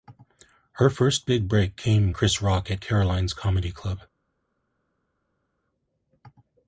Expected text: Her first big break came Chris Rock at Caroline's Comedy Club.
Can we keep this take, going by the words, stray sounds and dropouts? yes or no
yes